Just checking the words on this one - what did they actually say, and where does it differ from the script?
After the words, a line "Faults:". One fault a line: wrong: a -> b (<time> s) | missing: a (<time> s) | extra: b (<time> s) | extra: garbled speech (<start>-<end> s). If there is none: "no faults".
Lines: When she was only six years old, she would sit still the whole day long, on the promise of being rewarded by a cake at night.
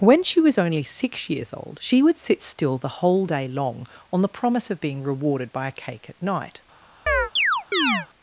When she was only six years old, she would sit still the whole day long, on the promise of being rewarded by a cake at night.
Faults:
no faults